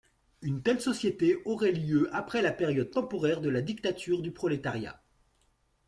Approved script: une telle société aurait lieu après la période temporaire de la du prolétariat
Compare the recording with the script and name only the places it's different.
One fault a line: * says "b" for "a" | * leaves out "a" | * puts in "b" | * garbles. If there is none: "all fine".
* puts in "dictature"